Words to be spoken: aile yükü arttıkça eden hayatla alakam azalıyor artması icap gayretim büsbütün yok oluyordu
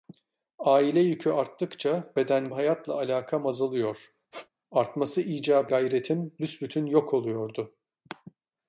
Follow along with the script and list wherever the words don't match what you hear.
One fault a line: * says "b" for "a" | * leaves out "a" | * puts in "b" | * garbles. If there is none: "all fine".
all fine